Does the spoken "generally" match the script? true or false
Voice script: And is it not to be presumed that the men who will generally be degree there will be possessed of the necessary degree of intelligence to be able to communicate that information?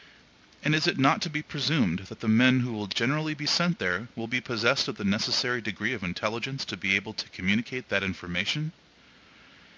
true